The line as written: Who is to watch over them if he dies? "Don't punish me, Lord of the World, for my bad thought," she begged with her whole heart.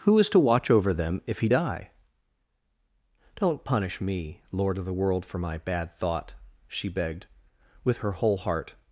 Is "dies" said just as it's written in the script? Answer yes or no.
no